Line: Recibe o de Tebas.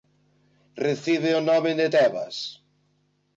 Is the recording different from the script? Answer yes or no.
yes